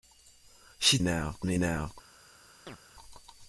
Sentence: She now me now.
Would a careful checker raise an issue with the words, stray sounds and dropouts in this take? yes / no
yes